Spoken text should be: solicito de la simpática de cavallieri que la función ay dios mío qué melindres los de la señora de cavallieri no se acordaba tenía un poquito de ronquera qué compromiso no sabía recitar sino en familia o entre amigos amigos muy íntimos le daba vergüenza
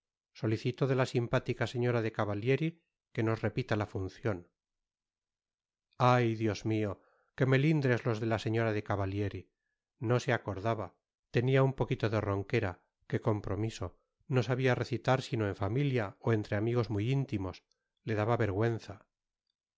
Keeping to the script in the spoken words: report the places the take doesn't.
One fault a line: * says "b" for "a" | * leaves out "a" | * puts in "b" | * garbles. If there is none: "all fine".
* puts in "señora"
* puts in "nos repita"
* leaves out "amigos"